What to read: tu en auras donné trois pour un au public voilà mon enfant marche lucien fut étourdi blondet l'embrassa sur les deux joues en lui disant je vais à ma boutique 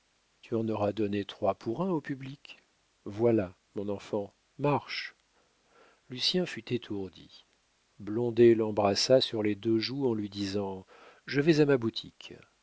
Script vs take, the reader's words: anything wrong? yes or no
no